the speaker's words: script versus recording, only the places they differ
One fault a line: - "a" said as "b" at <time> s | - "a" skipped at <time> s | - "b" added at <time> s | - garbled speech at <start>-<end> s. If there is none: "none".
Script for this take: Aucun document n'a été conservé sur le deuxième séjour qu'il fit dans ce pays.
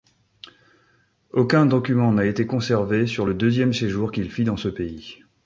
none